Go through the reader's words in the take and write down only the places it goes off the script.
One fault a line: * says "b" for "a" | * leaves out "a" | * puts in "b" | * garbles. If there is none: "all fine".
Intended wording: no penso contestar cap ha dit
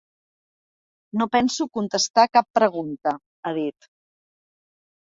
* puts in "pregunta"